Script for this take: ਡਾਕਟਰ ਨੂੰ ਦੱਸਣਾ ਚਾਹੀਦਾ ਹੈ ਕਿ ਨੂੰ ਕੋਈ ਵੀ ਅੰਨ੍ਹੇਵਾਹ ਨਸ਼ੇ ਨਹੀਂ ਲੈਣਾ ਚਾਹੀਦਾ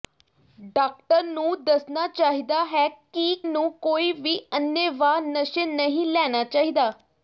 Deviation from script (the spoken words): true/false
false